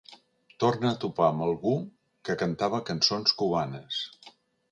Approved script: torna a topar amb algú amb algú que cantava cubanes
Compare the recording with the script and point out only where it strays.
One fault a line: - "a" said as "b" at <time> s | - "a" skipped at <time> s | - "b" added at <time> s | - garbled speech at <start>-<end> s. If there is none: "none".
- "amb algú" skipped at 1.7 s
- "cançons" added at 2.9 s